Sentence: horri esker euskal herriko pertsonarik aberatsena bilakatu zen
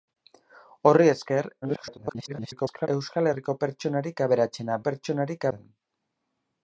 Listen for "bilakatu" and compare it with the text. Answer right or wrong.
wrong